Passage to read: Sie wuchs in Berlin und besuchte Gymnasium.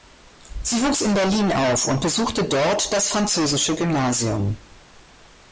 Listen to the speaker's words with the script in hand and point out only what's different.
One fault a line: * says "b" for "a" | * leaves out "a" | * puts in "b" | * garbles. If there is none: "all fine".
* puts in "auf"
* puts in "dort das Französische"